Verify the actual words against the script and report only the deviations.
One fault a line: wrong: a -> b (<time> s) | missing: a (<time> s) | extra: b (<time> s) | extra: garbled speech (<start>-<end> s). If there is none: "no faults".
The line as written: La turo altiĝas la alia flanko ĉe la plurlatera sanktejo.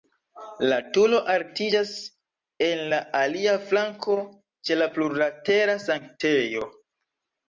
extra: en (2.7 s)